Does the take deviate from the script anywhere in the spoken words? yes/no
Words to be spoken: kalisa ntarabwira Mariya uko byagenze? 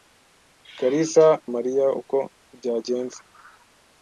yes